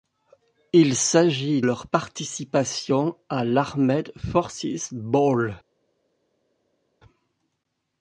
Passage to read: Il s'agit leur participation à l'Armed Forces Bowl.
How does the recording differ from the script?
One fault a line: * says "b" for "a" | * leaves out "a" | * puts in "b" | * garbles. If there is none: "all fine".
all fine